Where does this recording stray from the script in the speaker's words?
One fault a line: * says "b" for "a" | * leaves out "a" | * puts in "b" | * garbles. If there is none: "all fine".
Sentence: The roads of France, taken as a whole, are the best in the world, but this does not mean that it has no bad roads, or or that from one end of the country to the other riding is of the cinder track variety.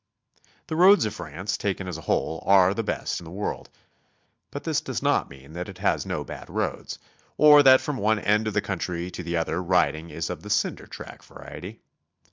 * leaves out "or"